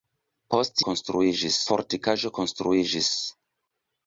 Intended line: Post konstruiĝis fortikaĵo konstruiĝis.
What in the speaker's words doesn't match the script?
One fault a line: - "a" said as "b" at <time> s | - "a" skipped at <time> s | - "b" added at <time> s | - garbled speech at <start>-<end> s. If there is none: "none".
none